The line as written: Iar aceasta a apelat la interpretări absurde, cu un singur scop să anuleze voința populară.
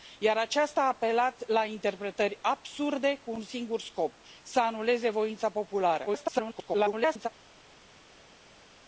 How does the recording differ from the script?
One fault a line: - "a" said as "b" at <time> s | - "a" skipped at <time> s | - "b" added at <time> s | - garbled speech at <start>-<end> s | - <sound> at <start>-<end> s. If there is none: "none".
- garbled speech at 6.1-7.3 s